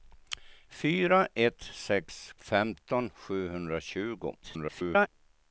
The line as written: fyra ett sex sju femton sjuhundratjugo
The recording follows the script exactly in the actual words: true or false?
false